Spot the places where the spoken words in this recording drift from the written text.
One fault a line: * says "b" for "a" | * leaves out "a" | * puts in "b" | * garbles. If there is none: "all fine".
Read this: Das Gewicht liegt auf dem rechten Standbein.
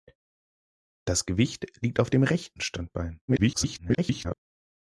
* garbles